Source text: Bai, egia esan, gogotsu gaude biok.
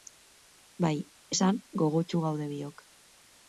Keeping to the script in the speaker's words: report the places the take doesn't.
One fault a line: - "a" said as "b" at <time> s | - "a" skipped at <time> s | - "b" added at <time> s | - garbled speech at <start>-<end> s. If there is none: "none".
- "egia" skipped at 0.9 s